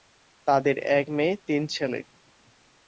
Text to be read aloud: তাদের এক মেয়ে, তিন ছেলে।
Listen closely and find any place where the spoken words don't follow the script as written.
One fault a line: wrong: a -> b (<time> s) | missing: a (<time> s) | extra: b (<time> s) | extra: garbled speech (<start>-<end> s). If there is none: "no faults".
no faults